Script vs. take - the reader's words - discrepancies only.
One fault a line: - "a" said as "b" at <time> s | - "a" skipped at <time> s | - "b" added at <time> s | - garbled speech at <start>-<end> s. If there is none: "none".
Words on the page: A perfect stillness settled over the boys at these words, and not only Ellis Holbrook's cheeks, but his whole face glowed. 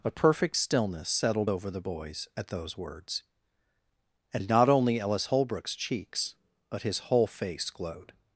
- "these" said as "those" at 2.5 s